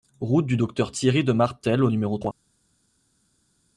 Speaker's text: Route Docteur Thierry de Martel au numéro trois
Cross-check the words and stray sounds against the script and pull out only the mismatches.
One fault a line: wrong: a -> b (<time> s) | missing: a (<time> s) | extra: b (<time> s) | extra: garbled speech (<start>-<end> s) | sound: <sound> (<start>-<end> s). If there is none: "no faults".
extra: du (0.5 s)